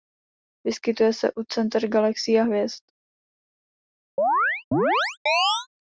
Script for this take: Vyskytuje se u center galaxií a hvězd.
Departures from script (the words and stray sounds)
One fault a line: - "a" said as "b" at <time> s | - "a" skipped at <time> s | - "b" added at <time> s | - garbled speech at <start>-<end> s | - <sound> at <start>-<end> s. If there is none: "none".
- chirp at 4.2-5.7 s